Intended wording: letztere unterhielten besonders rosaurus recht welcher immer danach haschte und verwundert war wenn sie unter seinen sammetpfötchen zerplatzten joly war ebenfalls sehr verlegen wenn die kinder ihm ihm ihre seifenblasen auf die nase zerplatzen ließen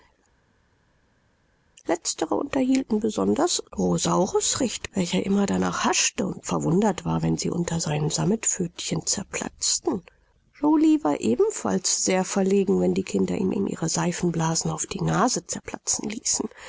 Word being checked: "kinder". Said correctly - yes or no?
yes